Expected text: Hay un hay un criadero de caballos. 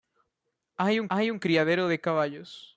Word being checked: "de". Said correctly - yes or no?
yes